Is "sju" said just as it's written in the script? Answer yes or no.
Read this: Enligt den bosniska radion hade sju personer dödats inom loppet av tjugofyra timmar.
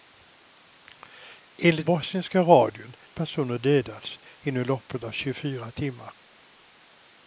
no